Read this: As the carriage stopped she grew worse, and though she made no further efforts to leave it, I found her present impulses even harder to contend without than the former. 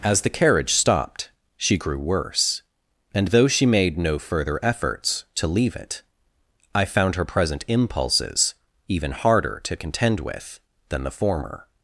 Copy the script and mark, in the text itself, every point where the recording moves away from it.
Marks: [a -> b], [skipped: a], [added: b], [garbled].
As the carriage stopped she grew worse, and though she made no further efforts to leave it, I found her present impulses even harder to contend [without -> with] than the former.